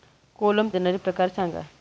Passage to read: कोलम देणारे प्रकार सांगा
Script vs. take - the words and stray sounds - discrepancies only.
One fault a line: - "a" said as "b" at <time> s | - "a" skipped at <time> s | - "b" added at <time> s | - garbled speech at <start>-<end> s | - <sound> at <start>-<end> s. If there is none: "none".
none